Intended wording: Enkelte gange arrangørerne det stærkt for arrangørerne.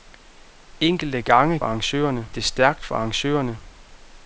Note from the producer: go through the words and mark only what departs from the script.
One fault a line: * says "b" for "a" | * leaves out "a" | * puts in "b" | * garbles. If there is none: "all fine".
all fine